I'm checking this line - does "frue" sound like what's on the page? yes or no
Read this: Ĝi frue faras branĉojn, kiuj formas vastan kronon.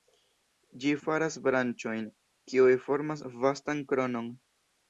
no